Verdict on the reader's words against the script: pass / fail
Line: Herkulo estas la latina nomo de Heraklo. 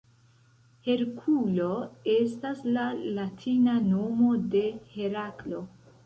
pass